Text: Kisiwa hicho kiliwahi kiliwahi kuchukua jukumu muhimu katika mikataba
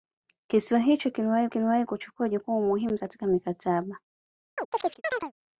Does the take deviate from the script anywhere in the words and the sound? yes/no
yes